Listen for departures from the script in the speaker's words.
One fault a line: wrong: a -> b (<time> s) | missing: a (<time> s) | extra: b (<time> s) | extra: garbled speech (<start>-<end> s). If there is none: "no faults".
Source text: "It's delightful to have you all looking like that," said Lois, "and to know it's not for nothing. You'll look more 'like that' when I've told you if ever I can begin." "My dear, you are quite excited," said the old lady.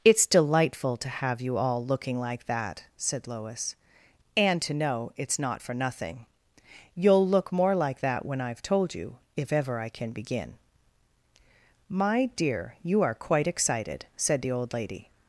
no faults